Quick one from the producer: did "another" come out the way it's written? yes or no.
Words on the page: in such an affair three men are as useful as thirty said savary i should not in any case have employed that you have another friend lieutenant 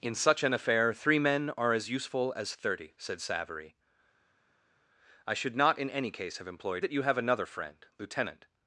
yes